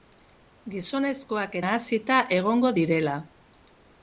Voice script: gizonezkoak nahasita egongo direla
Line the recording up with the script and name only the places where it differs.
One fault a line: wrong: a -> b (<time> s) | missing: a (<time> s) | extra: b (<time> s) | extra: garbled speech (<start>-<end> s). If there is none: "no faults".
no faults